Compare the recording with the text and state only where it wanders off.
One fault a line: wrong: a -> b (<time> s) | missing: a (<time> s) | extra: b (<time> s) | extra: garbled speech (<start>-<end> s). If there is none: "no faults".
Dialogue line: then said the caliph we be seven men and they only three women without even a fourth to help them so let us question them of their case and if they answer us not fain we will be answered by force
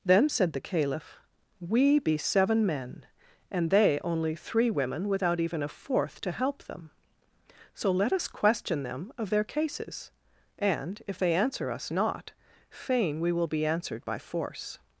wrong: case -> cases (9.4 s)